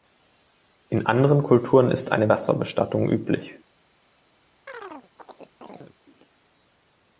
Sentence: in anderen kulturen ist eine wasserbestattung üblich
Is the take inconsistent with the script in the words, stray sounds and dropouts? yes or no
yes